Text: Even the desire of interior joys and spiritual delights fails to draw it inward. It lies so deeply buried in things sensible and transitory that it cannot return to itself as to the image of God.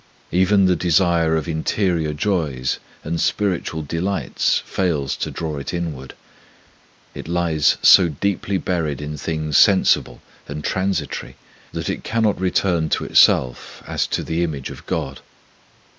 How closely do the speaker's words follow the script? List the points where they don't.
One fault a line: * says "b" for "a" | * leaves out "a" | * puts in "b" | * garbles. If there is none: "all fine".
all fine